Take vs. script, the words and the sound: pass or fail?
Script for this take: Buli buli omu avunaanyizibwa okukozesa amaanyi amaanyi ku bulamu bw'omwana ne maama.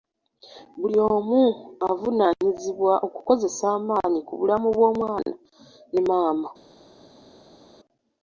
fail